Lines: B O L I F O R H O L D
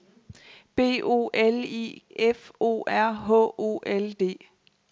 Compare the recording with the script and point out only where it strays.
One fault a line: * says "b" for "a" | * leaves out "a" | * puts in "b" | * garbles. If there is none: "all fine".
all fine